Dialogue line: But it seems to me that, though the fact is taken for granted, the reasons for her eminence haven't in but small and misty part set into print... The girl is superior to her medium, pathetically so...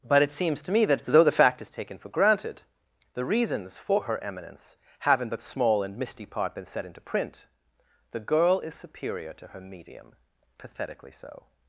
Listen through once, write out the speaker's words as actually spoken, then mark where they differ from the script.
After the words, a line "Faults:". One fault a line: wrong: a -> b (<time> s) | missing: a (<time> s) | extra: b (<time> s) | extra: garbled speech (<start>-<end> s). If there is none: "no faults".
But it seems to me that, though the fact is taken for granted, the reasons for her eminence have in but small and misty part been set into print... The girl is superior to her medium, pathetically so...
Faults:
wrong: haven't -> have (5.0 s)
extra: been (6.5 s)